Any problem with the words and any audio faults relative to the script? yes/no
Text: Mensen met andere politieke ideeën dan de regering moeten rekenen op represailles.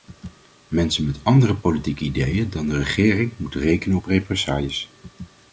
no